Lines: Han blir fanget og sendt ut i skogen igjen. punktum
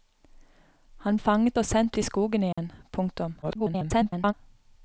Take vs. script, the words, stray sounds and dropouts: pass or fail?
fail